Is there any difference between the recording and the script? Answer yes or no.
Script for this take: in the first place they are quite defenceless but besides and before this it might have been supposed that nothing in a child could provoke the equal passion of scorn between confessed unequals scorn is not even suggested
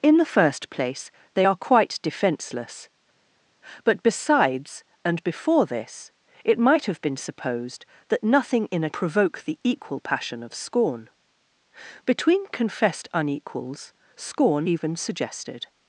yes